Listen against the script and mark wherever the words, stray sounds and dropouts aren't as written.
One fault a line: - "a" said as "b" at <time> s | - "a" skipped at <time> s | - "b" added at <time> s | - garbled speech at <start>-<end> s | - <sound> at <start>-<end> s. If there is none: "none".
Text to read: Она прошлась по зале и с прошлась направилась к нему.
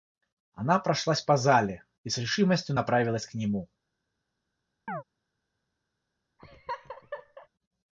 - "прошлась" said as "решимостью" at 2.2 s
- chirp at 4.9-5.0 s
- laugh at 6.4-7.5 s